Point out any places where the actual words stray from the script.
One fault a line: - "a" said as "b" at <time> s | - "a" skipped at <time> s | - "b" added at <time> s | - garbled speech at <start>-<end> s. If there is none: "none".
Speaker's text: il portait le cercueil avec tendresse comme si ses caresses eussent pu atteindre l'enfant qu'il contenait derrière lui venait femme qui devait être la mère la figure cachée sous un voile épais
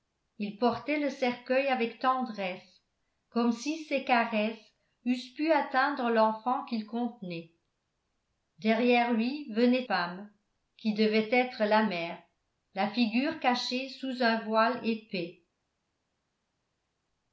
none